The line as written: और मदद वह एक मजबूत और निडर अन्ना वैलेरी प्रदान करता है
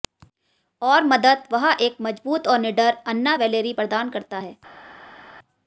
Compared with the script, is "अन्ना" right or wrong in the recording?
right